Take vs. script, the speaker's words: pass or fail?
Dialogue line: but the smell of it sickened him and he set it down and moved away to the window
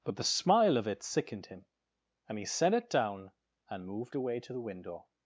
fail